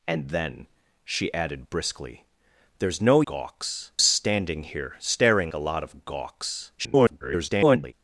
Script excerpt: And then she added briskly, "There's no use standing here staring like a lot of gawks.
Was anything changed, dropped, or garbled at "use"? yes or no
yes